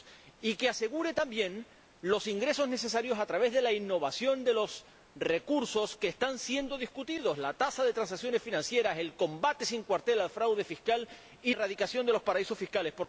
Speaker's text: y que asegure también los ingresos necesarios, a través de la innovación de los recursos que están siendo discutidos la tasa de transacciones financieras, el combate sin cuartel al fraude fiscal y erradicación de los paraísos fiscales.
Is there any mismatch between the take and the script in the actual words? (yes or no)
no